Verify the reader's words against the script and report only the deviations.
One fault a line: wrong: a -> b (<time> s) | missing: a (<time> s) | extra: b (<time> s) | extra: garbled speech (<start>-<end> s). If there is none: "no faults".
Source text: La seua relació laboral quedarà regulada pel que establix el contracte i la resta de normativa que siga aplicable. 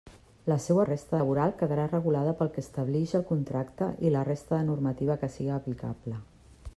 wrong: relació -> resta (0.9 s)